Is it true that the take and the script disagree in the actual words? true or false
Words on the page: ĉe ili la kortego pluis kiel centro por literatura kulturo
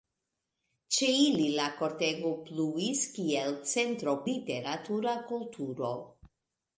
true